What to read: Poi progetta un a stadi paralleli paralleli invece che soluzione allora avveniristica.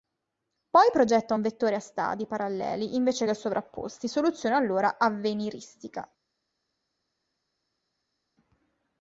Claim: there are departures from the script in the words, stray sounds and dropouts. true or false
true